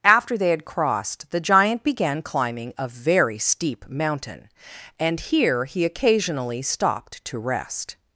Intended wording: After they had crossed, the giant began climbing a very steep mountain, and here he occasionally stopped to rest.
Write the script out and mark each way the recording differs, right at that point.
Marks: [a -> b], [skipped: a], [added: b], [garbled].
After they had crossed, the giant began climbing a very steep mountain, and here he occasionally stopped to rest.